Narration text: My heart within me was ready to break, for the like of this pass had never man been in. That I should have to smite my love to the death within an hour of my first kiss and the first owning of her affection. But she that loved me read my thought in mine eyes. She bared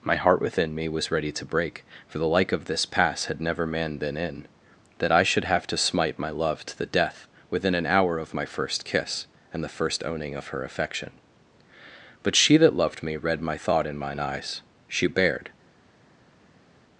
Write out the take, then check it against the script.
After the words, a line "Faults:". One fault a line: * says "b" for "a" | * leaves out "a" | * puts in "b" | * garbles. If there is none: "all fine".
My heart within me was ready to break, for the like of this pass had never man been in. That I should have to smite my love to the death within an hour of my first kiss and the first owning of her affection. But she that loved me read my thought in mine eyes. She bared
Faults:
all fine